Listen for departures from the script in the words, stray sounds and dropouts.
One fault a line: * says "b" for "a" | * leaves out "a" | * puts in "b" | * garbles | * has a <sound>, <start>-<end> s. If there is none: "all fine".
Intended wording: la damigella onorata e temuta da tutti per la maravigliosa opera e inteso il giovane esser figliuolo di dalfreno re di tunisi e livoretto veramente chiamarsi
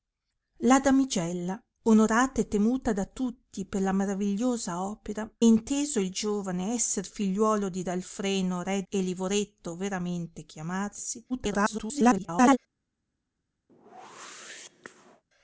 * leaves out "e"
* leaves out "di tunisi"
* garbles
* has a whoosh, 13.7-15.2 s